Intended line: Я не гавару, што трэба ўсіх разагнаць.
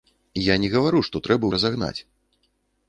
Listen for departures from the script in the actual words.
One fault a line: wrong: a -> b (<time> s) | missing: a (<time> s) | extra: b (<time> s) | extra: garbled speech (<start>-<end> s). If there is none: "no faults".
missing: ўсіх (1.4 s)